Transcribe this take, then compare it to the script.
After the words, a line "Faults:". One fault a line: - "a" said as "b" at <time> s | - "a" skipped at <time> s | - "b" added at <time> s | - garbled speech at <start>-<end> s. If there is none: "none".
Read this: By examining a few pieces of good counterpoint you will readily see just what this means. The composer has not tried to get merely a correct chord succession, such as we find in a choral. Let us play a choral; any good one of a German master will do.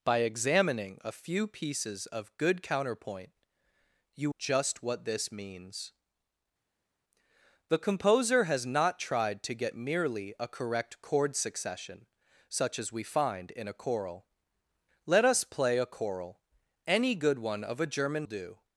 By examining a few pieces of good counterpoint you just what this means. The composer has not tried to get merely a correct chord succession, such as we find in a choral. Let us play a choral; any good one of a German do.
Faults:
- "will readily see" skipped at 4.3 s
- "master will" skipped at 18.3 s